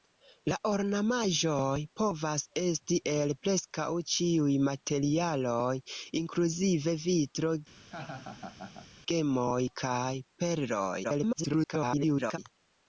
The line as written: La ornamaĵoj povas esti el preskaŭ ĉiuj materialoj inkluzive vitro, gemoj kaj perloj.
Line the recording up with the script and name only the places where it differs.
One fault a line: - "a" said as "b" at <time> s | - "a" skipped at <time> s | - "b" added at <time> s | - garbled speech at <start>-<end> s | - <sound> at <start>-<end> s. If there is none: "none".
- laugh at 7.8-8.9 s
- garbled speech at 11.0-12.4 s